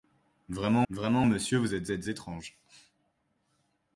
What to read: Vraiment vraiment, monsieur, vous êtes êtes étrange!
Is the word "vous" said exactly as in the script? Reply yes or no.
yes